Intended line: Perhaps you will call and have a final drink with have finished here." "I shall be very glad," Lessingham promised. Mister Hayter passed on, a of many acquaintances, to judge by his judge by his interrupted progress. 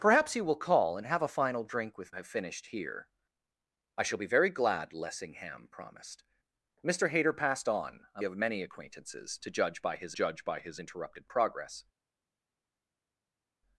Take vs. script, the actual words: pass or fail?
pass